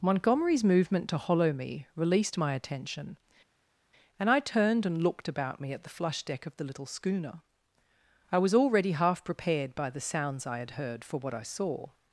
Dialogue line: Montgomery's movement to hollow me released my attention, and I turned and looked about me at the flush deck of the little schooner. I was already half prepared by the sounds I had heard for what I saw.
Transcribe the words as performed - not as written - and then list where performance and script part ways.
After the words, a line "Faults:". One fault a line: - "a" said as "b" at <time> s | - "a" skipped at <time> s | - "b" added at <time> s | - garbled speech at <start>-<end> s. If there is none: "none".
Montgomery's movement to hollow me released my attention, and I turned and looked about me at the flush deck of the little schooner. I was already half prepared by the sounds I had heard for what I saw.
Faults:
none